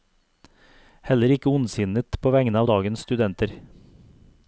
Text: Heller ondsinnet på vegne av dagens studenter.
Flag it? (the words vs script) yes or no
yes